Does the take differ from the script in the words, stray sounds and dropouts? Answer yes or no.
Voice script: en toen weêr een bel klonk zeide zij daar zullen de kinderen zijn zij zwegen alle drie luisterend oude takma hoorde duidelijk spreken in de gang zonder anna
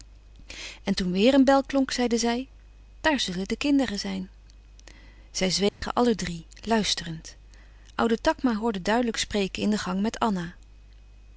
yes